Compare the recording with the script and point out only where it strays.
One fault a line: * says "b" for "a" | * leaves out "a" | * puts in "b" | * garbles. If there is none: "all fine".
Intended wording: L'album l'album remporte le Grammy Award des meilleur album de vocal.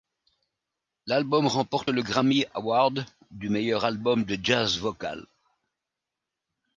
* leaves out "l'album"
* says "du" for "des"
* puts in "jazz"